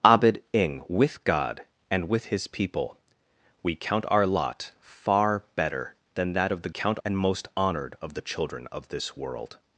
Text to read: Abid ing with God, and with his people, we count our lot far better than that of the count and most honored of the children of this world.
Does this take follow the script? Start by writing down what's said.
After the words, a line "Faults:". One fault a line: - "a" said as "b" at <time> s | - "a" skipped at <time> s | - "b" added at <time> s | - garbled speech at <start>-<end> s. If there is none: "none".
Abid ing with God, and with his people, we count our lot far better than that of the count and most honored of the children of this world.
Faults:
none